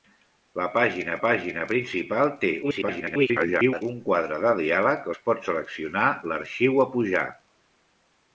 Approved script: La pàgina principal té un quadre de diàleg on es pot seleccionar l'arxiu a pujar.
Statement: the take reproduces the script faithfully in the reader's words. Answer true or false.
false